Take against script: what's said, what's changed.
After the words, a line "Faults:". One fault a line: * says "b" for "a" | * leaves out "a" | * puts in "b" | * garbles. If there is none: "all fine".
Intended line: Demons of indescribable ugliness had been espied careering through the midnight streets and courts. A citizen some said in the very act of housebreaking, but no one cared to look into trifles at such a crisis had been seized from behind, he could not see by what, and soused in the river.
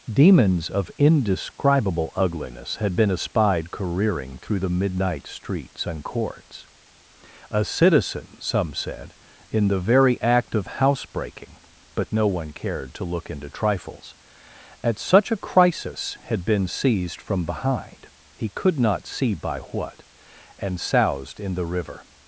Demons of indescribable ugliness had been espied careering through the midnight streets and courts. A citizen some said in the very act of housebreaking, but no one cared to look into trifles at such a crisis had been seized from behind, he could not see by what, and soused in the river.
Faults:
all fine